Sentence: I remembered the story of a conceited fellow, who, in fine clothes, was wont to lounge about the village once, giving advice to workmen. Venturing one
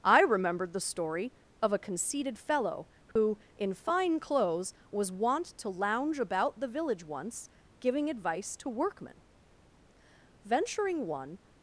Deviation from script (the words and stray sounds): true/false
true